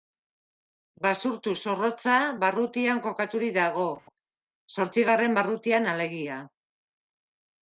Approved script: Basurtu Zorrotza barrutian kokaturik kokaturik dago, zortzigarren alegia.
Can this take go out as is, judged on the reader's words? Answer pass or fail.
fail